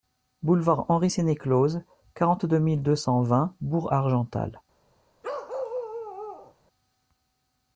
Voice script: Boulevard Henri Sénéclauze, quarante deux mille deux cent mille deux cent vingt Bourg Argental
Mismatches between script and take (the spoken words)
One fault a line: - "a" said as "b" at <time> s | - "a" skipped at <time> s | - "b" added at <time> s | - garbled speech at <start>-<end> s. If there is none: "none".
- "mille deux cent" skipped at 3.2 s